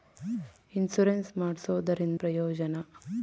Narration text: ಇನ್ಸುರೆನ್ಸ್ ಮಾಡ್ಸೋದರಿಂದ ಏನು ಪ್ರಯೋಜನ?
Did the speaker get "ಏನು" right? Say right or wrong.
wrong